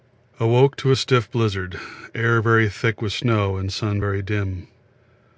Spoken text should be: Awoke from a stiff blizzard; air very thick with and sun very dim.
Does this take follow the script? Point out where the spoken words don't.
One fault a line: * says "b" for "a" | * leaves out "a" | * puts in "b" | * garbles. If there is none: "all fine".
* says "to" for "from"
* puts in "snow"